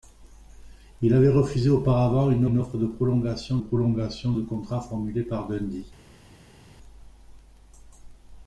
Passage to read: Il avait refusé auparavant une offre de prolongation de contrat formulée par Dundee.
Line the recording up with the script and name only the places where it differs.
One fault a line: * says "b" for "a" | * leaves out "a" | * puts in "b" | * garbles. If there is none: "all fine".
* puts in "une"
* puts in "prolongation"